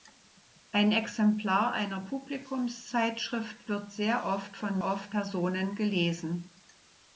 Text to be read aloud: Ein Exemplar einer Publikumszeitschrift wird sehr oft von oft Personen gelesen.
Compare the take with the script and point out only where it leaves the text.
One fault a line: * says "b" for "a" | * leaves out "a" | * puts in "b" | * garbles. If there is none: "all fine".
all fine